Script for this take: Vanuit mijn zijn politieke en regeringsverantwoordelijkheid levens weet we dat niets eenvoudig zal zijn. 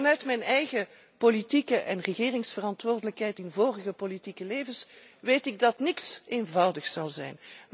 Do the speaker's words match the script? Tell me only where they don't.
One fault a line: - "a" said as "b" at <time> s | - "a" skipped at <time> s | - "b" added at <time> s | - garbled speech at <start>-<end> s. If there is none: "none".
- "zijn" said as "eigen" at 0.4 s
- "in vorige politieke" added at 3.4 s
- "we" said as "ik" at 5.5 s